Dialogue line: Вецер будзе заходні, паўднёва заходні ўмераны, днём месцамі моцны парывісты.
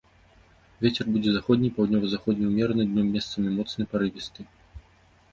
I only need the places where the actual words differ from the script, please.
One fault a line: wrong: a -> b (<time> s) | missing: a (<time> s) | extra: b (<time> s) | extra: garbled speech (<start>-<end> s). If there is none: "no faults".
no faults